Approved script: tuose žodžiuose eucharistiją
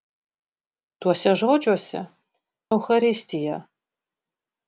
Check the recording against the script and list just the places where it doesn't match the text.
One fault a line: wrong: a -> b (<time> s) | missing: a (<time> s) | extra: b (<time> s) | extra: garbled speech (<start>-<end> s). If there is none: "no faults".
no faults